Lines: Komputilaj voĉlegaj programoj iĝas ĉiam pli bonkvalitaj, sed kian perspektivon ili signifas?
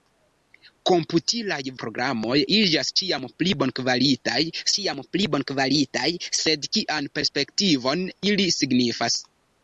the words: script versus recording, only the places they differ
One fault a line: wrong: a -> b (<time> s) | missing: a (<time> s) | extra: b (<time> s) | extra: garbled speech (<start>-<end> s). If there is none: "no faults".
missing: voĉlegaj (1.6 s)
extra: ĉiam pli bonkvalitaj (4.8 s)